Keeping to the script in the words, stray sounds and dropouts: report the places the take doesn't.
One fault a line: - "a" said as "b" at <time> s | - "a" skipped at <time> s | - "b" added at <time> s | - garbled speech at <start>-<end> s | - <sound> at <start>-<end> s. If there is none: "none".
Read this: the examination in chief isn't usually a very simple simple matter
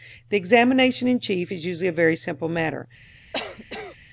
- "isn't" said as "is" at 1.5 s
- "simple" skipped at 2.5 s
- cough at 3.3-4.0 s